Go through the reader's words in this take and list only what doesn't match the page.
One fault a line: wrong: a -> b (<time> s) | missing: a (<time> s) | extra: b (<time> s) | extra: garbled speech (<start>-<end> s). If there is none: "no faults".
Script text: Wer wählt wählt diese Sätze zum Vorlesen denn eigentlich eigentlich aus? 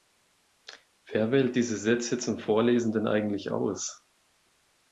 missing: wählt (1.6 s)
missing: eigentlich (3.5 s)